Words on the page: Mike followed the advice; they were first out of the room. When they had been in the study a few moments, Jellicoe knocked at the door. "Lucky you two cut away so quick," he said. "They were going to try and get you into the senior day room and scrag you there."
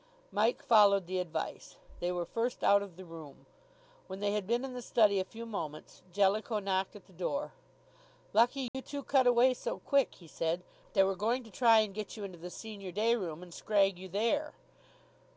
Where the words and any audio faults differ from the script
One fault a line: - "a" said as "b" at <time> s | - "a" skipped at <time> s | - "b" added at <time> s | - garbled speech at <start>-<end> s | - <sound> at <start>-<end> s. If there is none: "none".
- dropout at 8.7-8.7 s